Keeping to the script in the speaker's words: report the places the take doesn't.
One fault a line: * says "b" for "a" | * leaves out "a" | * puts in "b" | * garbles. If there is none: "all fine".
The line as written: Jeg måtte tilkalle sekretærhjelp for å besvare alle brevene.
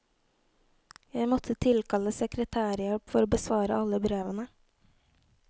all fine